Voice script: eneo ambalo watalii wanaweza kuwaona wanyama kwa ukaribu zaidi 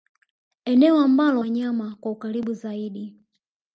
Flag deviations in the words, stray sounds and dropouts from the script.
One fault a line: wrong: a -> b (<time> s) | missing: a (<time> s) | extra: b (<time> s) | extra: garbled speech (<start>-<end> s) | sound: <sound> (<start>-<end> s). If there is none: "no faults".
missing: watalii wanaweza kuwaona (1.4 s)